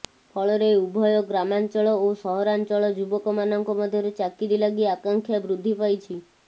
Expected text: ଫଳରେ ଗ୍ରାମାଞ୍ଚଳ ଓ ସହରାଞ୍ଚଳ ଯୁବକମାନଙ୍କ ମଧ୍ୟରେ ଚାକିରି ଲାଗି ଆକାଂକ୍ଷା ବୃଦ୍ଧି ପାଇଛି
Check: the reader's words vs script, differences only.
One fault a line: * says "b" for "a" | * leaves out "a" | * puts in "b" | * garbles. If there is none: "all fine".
* puts in "ଉଭୟ"